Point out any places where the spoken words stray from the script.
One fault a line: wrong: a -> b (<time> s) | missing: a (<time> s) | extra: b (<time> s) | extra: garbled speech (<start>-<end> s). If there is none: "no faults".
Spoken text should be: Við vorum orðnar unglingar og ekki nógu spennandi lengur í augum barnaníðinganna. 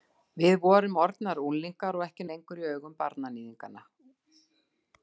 missing: nógu spennandi (2.3 s)